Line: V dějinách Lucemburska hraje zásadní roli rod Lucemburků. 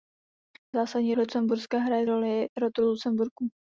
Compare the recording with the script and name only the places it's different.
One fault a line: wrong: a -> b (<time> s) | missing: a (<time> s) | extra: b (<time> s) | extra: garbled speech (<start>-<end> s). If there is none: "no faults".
wrong: dějinách -> zásadní (0.7 s)
missing: zásadní (2.1 s)